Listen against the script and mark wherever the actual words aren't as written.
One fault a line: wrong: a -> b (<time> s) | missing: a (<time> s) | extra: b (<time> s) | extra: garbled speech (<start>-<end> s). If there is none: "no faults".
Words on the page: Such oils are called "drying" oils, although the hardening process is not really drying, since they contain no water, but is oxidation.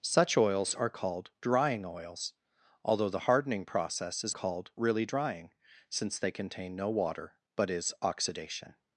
wrong: not -> called (4.3 s)